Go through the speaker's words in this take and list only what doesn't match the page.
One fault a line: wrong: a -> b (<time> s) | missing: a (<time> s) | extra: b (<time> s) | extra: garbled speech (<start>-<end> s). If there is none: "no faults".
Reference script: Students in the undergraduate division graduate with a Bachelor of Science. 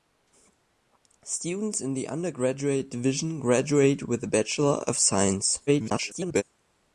extra: garbled speech (5.7-6.4 s)